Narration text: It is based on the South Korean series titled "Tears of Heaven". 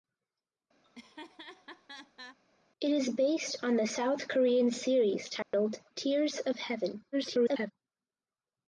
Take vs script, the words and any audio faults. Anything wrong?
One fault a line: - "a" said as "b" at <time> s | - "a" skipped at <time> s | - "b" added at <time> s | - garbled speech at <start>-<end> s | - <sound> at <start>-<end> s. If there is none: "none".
- laugh at 0.8-2.4 s
- dropout at 5.4-5.5 s
- garbled speech at 7.1-7.7 s